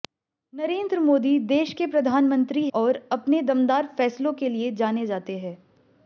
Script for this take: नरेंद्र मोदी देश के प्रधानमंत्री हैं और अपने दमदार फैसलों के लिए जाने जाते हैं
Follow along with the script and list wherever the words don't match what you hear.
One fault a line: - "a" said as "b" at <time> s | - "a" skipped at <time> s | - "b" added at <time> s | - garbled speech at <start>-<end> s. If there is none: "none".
- "हैं" skipped at 2.7 s